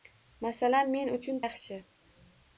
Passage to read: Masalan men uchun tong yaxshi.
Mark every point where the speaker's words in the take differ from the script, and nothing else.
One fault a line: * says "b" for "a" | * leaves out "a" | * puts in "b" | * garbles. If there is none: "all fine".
* leaves out "tong"